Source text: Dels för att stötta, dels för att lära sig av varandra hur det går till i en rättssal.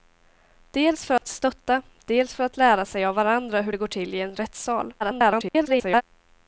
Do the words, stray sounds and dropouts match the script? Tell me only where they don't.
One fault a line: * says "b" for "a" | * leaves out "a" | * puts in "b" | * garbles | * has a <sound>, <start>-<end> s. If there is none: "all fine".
* has a dropout, 1.2-1.2 s
* garbles